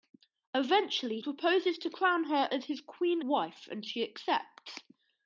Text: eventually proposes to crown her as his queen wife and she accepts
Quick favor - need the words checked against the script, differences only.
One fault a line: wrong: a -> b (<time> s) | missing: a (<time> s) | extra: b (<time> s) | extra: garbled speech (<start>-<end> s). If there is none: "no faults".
no faults